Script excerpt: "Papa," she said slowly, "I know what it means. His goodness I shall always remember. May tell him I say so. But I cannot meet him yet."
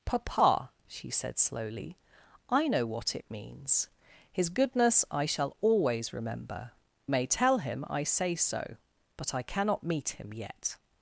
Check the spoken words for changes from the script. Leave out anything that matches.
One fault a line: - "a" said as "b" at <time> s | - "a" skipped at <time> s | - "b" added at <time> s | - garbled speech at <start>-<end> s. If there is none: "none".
none